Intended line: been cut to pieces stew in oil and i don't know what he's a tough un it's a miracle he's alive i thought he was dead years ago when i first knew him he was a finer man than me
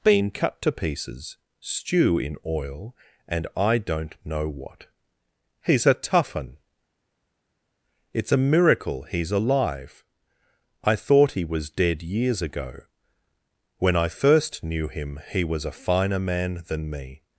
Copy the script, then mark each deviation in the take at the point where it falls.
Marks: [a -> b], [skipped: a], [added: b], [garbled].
been cut to pieces stew in oil and i don't know what he's a tough un it's a miracle he's alive i thought he was dead years ago when i first knew him he was a finer man than me